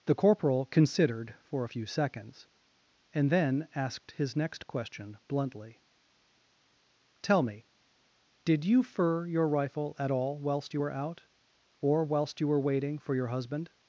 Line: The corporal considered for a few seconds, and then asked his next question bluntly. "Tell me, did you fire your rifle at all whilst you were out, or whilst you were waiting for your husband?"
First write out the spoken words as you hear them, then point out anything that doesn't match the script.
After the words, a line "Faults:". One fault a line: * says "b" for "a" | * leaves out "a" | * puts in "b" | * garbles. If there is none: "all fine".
The corporal considered for a few seconds, and then asked his next question bluntly. "Tell me, did you fur your rifle at all whilst you were out, or whilst you were waiting for your husband?"
Faults:
* says "fur" for "fire"